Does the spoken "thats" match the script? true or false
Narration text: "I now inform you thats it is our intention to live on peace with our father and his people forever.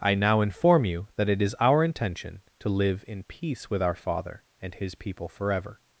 false